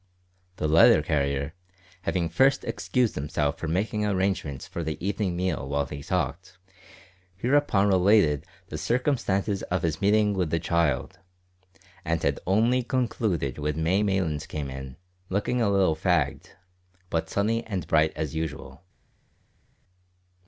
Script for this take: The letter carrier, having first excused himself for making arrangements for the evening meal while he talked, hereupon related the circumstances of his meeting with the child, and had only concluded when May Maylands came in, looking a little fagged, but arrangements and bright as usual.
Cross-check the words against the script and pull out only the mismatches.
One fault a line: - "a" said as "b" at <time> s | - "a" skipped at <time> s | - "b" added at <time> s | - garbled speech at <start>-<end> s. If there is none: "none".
- "arrangements" said as "sunny" at 17.3 s